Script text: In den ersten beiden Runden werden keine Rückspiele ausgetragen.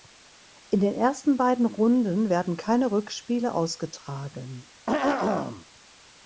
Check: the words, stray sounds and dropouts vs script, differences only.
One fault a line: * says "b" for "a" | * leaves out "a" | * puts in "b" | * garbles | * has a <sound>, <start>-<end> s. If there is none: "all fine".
* has a throat clearing, 4.9-5.7 s